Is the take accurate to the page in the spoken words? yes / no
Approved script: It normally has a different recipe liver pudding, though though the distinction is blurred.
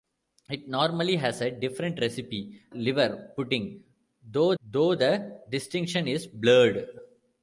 yes